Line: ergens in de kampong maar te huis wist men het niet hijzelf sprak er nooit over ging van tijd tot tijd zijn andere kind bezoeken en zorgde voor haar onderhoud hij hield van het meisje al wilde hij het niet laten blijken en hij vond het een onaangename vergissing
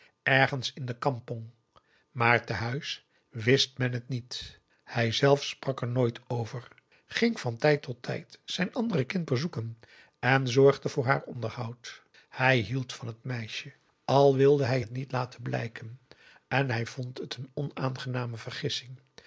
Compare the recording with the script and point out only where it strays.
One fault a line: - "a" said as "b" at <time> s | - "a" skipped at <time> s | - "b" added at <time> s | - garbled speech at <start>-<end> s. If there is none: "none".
none